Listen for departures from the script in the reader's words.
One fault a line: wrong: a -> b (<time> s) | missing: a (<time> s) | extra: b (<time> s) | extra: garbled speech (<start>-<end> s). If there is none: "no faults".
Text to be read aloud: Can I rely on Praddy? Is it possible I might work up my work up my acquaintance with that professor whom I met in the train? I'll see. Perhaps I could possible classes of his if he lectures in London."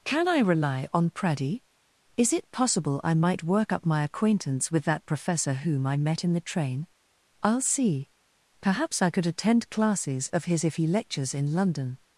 missing: work up my (4.0 s)
wrong: possible -> attend (9.3 s)